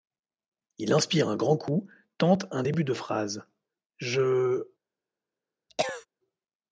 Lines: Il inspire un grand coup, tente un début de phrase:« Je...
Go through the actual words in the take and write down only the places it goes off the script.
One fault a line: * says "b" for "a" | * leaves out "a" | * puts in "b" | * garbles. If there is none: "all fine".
all fine